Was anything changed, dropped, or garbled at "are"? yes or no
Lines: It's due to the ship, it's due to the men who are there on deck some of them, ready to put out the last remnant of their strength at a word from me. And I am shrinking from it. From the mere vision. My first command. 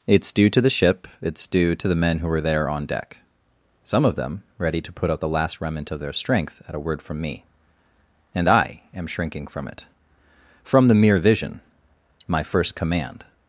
yes